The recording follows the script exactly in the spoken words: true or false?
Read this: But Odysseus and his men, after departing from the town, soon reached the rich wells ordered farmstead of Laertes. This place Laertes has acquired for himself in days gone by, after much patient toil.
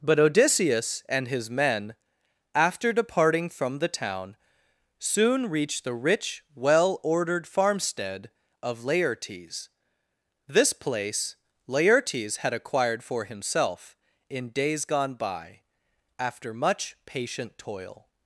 false